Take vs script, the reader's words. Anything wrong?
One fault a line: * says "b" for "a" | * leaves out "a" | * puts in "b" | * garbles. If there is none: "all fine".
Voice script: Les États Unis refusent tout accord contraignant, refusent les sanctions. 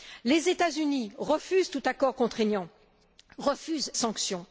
* leaves out "les"